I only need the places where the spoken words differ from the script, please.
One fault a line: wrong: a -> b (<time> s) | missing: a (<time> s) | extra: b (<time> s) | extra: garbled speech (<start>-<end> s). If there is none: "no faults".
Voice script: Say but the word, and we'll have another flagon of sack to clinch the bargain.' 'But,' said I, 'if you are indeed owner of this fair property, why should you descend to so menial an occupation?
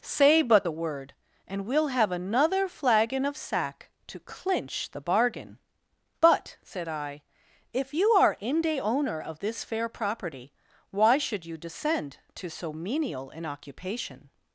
wrong: indeed -> inde (8.4 s)